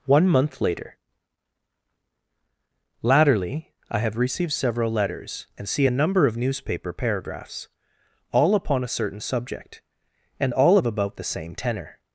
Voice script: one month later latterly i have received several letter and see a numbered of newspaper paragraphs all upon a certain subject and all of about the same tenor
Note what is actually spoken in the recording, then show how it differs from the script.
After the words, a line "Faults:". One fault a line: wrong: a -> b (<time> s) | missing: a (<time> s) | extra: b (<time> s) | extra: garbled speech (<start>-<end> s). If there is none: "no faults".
one month later latterly i have received several letters and see a number of newspaper paragraphs all upon a certain subject and all of about the same tenor
Faults:
wrong: letter -> letters (4.9 s)
wrong: numbered -> number (5.9 s)